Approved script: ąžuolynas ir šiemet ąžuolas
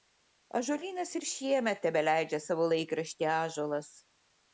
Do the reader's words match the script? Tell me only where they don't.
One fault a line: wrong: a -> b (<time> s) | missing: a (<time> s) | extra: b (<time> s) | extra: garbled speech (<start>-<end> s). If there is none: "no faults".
extra: tebeleidžia savo laikraštį (1.9 s)